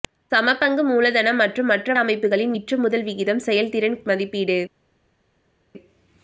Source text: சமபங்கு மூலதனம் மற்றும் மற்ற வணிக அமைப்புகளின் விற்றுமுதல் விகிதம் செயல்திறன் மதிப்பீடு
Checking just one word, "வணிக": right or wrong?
wrong